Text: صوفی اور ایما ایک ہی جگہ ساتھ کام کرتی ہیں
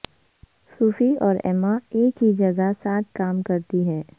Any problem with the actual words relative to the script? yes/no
no